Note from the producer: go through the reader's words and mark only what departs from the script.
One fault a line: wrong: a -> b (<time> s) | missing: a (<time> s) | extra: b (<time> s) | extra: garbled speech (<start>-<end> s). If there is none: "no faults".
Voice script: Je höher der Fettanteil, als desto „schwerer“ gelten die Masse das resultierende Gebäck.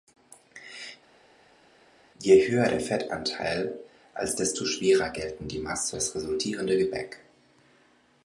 no faults